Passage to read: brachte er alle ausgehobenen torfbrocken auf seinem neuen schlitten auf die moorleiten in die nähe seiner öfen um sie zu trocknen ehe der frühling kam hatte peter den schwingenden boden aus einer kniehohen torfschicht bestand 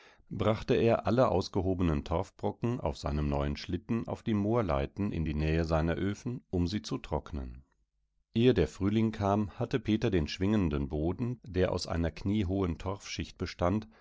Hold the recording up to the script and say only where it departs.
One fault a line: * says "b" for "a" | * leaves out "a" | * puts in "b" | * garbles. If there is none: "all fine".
* puts in "der"